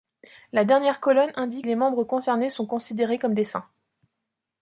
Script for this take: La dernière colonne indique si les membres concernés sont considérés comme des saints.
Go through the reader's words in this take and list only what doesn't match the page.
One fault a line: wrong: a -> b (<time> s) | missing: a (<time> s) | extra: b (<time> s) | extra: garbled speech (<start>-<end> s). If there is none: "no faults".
missing: si (1.7 s)